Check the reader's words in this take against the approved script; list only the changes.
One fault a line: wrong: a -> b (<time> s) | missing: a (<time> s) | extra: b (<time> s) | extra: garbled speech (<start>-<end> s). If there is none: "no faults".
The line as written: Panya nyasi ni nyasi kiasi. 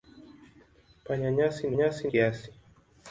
no faults